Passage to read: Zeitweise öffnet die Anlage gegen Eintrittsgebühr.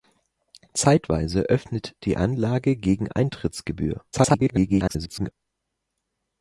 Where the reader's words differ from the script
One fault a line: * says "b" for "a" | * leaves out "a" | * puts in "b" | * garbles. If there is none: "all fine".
* garbles